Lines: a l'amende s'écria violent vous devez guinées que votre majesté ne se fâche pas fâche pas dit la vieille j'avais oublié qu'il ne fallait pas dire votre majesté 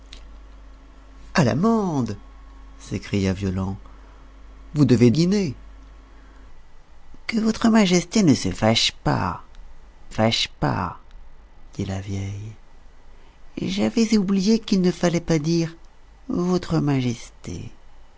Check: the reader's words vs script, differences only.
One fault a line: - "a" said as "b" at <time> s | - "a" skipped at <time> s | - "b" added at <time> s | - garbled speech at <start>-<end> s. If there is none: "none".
none